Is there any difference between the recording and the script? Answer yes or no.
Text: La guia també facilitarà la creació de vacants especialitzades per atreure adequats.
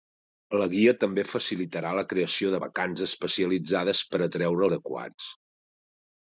no